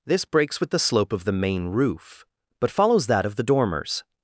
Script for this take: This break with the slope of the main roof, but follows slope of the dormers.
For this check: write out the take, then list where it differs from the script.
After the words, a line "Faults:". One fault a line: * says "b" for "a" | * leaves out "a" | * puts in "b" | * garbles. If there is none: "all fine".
This breaks with the slope of the main roof, but follows that of the dormers.
Faults:
* says "breaks" for "break"
* says "that" for "slope"